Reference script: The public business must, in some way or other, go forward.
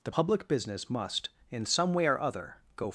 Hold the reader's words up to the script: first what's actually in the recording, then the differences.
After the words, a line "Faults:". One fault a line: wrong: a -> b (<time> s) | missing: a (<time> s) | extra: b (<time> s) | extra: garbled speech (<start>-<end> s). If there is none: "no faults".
The public business must, in some way or other, go.
Faults:
missing: forward (2.8 s)